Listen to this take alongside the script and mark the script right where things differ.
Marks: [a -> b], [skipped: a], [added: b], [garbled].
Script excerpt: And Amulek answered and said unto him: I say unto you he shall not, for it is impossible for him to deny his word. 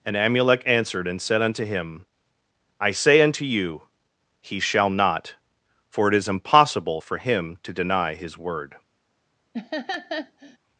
And Amulek answered and said unto him: I say unto you he shall not, for it is impossible for him to deny his word.